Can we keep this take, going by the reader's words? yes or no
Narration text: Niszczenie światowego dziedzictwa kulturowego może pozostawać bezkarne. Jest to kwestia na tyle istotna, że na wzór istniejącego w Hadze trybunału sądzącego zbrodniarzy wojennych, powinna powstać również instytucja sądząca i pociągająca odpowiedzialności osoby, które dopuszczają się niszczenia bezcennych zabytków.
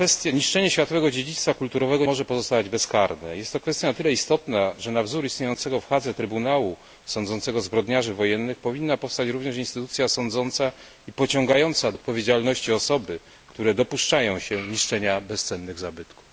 yes